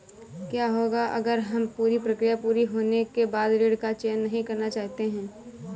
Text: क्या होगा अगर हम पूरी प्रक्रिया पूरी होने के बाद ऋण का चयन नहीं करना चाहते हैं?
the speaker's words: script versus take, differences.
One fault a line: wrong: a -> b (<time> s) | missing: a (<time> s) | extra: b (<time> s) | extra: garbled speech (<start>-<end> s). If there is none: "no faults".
no faults